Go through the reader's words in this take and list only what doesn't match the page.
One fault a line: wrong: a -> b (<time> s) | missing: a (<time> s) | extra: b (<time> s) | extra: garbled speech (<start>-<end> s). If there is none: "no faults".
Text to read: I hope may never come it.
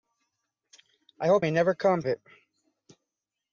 no faults